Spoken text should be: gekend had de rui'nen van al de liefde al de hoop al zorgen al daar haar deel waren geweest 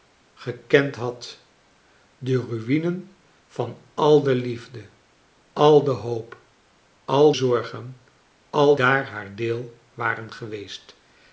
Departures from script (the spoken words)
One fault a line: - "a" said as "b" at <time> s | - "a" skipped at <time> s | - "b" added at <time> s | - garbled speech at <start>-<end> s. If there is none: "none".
none